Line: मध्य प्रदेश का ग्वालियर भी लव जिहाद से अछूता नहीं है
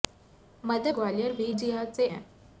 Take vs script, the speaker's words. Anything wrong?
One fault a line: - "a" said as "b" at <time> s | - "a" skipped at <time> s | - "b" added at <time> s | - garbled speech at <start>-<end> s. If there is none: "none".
- "प्रदेश का" skipped at 0.9 s
- "लव" skipped at 1.5 s
- "अछूता नहीं" skipped at 2.1 s